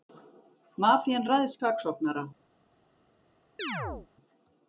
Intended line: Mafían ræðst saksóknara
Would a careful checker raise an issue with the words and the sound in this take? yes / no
yes